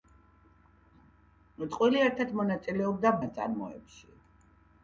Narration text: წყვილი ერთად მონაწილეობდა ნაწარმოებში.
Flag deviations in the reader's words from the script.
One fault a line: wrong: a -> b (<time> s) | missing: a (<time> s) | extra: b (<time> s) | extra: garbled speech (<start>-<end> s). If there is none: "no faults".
no faults